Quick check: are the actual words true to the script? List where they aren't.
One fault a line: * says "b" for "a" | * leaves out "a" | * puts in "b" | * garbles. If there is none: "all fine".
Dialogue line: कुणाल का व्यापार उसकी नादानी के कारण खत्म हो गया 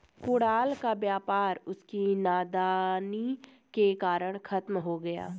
all fine